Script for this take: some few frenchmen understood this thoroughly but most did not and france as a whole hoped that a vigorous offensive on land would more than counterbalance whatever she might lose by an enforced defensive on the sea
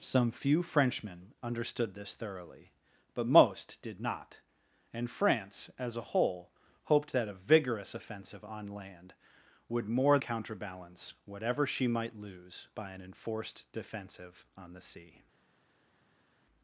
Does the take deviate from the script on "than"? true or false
true